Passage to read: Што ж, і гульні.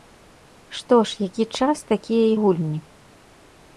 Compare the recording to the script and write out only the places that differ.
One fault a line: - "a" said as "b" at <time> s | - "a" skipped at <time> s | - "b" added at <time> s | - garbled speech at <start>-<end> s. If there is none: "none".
- "які час такія" added at 1.3 s